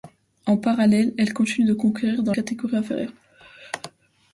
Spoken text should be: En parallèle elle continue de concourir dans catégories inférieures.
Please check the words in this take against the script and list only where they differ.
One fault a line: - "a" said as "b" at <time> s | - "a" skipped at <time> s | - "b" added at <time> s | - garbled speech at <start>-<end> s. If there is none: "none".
none